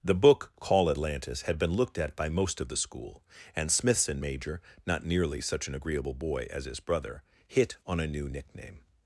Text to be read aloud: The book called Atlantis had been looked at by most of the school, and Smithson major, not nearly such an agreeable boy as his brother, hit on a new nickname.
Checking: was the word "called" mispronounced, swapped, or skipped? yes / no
yes